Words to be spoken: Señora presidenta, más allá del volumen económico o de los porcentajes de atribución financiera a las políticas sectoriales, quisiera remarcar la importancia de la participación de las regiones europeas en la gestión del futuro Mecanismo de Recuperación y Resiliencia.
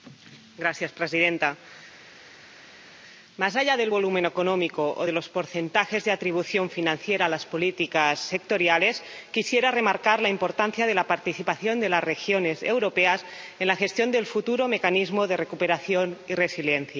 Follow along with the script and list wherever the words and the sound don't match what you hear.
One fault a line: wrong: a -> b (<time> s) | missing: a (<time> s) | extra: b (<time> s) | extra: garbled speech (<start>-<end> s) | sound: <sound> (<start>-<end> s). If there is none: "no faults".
no faults